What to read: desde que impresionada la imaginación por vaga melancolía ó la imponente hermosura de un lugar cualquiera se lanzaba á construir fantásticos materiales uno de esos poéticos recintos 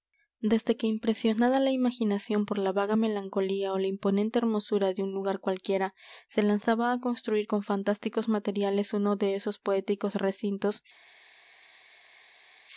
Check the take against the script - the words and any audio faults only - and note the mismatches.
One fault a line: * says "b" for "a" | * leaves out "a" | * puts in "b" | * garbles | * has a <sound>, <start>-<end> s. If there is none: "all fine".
* puts in "la"
* puts in "con"